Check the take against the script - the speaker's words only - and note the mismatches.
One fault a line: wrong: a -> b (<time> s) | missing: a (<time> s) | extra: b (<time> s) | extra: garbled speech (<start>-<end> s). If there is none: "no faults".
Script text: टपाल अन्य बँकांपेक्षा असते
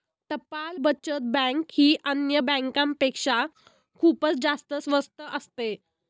extra: बचत बँक ही (0.8 s)
extra: खूपच जास्त स्वस्त (4.0 s)